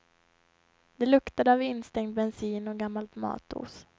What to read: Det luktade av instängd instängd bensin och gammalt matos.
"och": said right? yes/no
yes